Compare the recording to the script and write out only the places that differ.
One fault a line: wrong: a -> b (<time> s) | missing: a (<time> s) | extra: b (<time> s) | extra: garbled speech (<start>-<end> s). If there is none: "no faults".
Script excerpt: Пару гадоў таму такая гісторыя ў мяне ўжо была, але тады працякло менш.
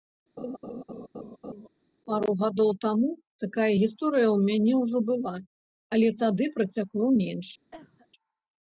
no faults